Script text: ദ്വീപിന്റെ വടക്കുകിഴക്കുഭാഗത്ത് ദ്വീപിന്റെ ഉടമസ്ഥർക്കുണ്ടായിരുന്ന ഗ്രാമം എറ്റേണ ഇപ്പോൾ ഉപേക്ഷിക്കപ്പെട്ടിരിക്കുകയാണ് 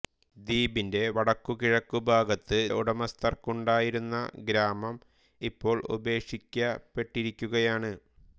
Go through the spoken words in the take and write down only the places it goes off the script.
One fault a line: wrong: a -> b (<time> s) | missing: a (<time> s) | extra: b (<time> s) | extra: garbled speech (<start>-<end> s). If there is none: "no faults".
missing: ദ്വീപിന്റെ (2.6 s)
missing: എറ്റേണ (5.0 s)